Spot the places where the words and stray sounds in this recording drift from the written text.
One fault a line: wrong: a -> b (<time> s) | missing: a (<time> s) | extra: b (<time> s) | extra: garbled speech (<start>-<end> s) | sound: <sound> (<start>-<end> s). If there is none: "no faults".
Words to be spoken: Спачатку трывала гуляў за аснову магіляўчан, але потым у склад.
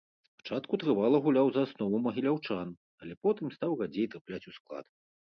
extra: стаў радзей трапляць (3.6 s)